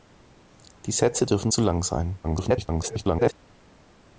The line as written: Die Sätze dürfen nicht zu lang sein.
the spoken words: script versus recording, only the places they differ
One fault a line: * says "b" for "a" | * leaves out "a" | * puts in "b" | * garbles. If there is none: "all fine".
* leaves out "nicht"
* garbles